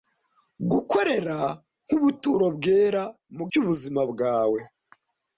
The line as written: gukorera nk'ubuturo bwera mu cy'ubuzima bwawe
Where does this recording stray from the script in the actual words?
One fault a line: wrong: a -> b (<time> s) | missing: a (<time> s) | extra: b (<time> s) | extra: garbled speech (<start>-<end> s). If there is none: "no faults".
no faults